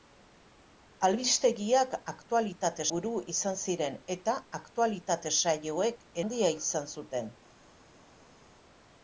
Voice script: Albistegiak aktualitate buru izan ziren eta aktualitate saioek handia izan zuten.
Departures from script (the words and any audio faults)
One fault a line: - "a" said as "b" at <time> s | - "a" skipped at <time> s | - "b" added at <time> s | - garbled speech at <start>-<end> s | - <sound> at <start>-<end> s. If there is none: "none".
none